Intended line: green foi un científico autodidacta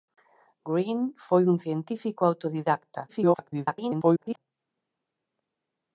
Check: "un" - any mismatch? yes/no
no